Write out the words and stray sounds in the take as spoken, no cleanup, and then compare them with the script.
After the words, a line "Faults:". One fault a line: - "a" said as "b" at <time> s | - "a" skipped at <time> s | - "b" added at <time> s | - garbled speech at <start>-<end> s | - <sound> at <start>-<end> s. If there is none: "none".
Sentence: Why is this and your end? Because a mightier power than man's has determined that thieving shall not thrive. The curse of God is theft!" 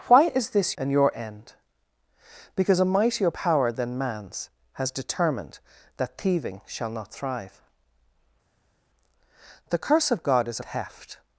Why is this and your end? Because a mightier power than man's has determined that thieving shall not thrive. The curse of God is theft!"
Faults:
none